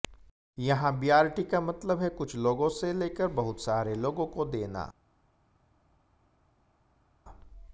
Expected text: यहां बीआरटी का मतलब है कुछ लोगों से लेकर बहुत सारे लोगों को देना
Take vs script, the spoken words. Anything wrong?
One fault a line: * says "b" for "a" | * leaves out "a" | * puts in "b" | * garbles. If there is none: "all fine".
all fine